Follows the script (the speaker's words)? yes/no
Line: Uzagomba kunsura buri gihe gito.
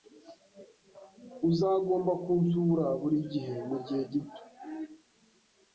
no